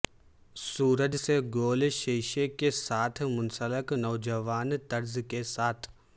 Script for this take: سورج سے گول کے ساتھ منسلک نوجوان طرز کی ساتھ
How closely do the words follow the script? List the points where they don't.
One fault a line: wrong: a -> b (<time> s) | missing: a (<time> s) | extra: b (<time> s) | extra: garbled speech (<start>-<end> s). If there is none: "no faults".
extra: شیشے (1.9 s)
wrong: کی -> کے (5.3 s)